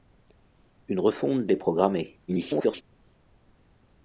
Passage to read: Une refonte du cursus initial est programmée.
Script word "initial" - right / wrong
wrong